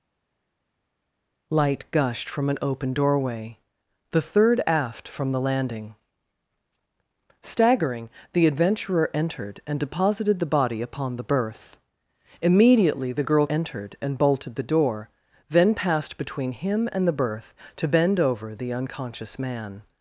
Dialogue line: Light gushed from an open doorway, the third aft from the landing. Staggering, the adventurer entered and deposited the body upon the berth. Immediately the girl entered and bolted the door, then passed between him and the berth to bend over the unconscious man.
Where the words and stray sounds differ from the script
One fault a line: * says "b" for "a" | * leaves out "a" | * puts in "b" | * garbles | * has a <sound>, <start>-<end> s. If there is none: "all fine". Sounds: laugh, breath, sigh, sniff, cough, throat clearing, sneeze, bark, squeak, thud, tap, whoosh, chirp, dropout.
all fine